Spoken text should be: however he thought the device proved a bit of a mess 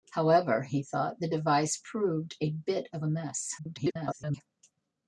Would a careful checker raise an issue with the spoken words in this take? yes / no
yes